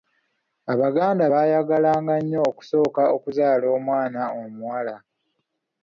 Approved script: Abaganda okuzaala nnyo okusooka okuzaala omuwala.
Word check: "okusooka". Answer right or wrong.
right